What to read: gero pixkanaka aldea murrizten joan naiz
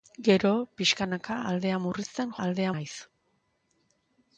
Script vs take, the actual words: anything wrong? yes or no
yes